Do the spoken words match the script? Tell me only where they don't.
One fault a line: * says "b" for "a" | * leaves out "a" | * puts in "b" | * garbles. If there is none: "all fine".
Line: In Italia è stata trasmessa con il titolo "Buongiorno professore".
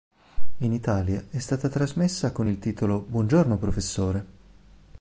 all fine